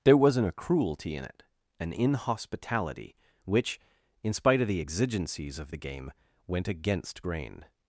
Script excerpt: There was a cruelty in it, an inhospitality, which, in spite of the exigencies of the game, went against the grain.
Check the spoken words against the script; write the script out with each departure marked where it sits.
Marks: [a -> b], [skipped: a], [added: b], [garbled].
There [was -> wasn't] a cruelty in it, an inhospitality, which, in spite of the exigencies of the game, went against [skipped: the] grain.